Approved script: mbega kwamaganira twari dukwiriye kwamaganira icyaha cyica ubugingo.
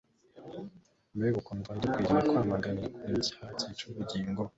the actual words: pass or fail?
fail